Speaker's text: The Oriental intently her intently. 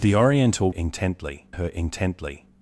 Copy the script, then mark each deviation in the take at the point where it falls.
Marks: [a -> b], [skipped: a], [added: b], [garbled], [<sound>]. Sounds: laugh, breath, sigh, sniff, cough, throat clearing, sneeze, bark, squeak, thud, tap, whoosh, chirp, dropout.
The Oriental intently her intently.